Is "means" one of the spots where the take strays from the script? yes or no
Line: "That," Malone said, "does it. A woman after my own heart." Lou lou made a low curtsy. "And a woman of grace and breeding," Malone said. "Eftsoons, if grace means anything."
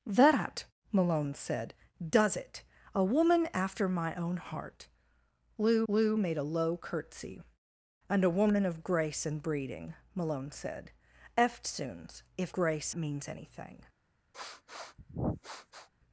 no